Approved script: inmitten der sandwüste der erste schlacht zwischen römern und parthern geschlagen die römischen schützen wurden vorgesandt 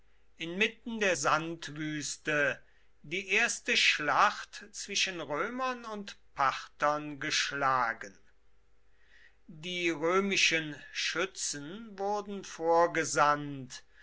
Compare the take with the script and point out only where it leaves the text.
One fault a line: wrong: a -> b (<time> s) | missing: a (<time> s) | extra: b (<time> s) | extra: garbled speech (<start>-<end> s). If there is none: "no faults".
wrong: der -> die (3.0 s)